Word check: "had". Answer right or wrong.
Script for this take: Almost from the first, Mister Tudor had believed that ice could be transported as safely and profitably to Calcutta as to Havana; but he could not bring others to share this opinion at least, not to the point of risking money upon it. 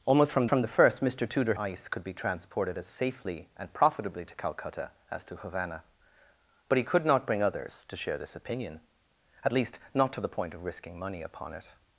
wrong